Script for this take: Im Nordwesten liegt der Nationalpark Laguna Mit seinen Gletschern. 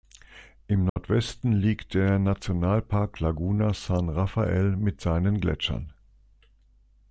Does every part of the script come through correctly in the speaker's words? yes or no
no